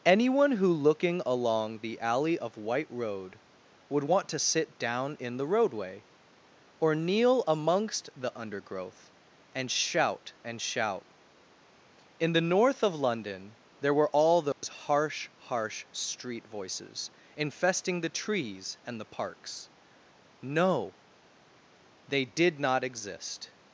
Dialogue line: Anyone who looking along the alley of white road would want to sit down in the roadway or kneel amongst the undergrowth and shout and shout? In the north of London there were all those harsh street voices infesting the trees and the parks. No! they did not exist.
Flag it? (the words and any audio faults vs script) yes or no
yes